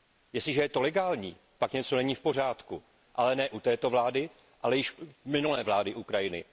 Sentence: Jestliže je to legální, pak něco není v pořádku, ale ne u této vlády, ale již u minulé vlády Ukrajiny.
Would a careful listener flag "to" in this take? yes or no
no